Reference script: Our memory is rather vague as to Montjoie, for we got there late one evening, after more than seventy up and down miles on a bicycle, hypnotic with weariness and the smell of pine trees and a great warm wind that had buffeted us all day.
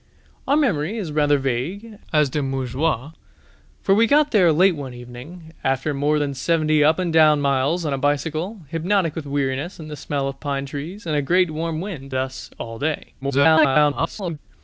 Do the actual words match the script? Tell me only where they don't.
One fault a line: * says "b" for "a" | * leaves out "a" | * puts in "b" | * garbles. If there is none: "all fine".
* leaves out "that had buffeted"
* garbles